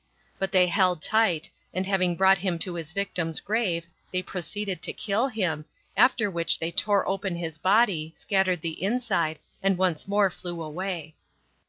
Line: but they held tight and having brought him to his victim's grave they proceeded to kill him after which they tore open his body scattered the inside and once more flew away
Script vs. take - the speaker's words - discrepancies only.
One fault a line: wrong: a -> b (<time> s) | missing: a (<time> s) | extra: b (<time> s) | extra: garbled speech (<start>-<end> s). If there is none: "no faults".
no faults